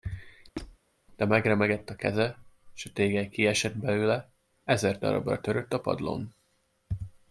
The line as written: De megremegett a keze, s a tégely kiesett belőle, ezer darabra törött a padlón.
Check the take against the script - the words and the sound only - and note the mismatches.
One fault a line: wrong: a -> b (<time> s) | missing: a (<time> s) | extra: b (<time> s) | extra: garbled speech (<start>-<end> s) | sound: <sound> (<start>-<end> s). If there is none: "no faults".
sound: squeak (0.6-0.8 s)